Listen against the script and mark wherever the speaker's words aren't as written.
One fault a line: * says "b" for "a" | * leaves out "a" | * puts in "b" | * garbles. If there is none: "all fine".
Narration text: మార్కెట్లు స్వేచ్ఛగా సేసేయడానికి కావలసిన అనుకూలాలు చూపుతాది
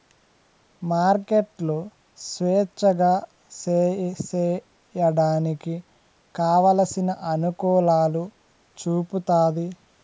all fine